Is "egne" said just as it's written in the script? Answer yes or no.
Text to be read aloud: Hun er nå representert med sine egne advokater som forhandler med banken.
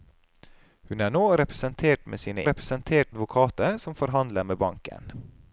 no